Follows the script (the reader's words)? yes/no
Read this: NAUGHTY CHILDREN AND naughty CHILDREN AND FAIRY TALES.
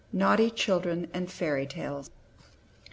no